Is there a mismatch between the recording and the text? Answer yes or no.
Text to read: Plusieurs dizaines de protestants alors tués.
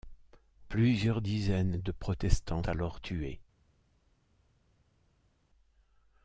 no